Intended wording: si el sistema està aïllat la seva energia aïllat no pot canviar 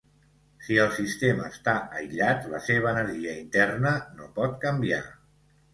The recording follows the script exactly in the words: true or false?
false